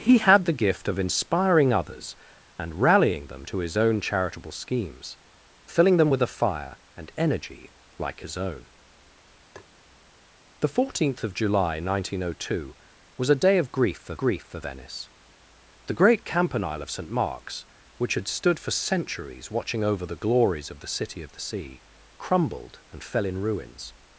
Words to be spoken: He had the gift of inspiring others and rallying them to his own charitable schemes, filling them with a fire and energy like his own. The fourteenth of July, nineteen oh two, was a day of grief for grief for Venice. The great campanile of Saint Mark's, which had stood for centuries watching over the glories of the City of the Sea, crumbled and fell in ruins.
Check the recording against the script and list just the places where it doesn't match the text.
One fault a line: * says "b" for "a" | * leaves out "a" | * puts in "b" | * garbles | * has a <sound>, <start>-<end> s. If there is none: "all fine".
* has a tap, 9.6-9.7 s